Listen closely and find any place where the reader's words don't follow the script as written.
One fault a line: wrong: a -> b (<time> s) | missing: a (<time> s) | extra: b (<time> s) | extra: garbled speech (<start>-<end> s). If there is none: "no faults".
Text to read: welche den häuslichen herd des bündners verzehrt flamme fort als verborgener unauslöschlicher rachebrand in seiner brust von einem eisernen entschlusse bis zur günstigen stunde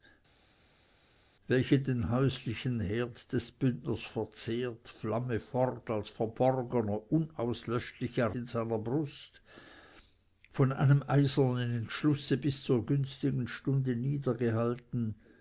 missing: rachebrand (8.3 s)